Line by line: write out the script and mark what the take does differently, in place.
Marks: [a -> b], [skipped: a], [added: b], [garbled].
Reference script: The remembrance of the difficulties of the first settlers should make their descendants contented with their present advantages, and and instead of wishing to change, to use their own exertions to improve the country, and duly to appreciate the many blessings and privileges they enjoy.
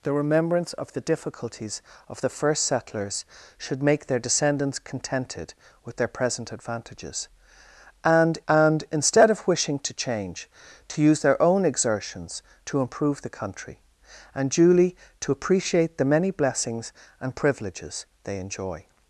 The remembrance of the difficulties of the first settlers should make their descendants contented with their present advantages, and and instead of wishing to change, to use their own exertions to improve the country, and duly to appreciate the many blessings and privileges they enjoy.